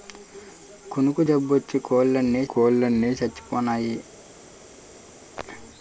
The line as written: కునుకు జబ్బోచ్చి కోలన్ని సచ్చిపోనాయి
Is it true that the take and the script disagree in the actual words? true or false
true